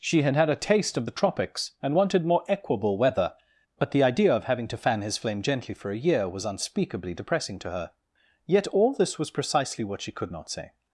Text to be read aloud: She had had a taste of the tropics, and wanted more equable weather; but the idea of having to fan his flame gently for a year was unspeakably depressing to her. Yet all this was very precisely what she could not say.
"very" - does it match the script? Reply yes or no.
no